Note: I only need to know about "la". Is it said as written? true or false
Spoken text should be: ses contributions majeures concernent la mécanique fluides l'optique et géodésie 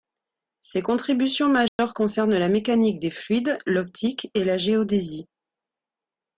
true